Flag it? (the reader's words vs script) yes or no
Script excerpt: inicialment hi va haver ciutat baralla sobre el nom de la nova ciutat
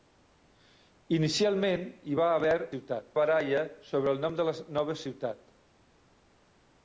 no